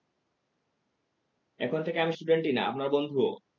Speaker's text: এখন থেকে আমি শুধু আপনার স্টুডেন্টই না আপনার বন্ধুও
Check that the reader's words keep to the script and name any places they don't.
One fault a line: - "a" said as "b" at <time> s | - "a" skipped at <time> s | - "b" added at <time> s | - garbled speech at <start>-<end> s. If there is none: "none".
- "শুধু আপনার" skipped at 2.1 s